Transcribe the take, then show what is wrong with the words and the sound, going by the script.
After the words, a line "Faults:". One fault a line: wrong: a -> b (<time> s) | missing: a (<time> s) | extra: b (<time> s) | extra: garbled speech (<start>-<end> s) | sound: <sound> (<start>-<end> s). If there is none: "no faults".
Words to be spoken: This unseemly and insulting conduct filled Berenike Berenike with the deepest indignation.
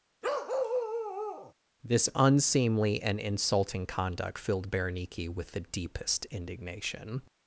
This unseemly and insulting conduct filled Berenike with the deepest indignation.
Faults:
sound: bark (0.2-1.5 s)
missing: Berenike (5.3 s)